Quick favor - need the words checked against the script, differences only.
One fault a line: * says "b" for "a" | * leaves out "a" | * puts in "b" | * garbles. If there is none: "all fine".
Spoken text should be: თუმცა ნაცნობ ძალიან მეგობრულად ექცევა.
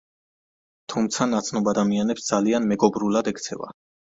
* puts in "ადამიანებს"